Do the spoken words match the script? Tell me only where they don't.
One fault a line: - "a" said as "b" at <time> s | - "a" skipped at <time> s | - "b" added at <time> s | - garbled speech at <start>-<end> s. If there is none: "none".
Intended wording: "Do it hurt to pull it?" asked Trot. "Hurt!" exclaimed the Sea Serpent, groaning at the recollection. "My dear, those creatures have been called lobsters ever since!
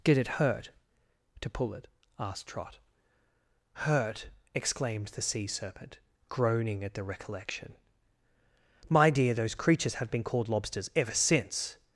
- "Do" said as "Did" at 0.0 s